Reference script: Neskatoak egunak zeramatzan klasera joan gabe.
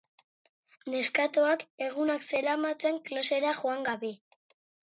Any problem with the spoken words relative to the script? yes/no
no